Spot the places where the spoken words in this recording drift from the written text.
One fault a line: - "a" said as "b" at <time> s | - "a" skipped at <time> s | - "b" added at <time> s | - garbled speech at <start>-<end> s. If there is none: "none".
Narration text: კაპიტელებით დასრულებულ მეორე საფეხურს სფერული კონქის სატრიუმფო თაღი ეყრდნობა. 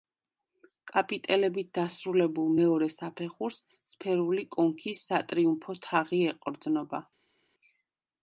none